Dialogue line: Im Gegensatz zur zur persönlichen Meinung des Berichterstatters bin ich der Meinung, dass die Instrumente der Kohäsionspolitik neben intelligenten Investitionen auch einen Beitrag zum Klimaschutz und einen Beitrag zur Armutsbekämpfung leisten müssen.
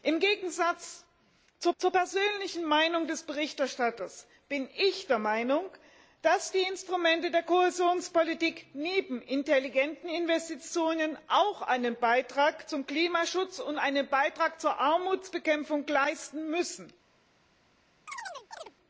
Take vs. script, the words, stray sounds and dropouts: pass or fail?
fail